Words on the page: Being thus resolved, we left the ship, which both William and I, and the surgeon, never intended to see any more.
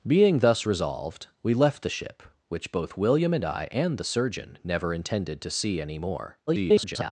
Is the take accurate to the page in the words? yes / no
no